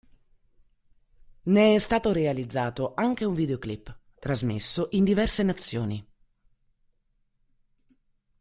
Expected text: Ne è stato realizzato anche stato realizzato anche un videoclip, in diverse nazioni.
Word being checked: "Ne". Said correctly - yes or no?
yes